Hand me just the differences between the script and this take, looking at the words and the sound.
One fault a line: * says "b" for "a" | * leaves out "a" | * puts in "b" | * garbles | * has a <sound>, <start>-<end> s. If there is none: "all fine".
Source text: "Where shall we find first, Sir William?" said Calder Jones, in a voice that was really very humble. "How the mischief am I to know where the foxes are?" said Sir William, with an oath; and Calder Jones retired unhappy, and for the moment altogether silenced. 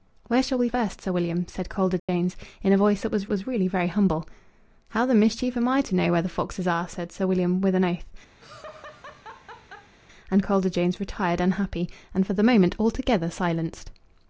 * leaves out "find"
* has a dropout, 2.0-2.1 s
* puts in "was"
* has a laugh, 8.4-9.9 s